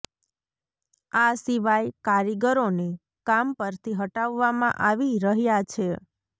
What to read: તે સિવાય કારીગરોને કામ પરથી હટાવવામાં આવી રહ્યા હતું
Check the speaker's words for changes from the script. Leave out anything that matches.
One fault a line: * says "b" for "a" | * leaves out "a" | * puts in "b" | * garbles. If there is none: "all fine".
* says "આ" for "તે"
* says "છે" for "હતું"